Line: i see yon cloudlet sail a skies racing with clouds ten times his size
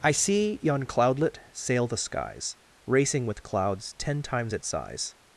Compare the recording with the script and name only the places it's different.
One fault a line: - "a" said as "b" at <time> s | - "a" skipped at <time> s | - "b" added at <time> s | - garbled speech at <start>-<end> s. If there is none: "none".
- "a" said as "the" at 1.9 s
- "his" said as "its" at 4.5 s